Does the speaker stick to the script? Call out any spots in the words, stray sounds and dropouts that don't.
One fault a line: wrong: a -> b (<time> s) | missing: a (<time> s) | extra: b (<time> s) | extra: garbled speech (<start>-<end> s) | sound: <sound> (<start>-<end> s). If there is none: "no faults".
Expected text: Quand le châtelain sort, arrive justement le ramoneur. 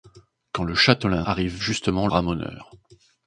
missing: sort (1.2 s)
missing: le (2.1 s)